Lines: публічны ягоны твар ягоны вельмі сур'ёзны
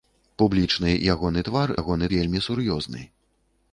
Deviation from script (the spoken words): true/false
false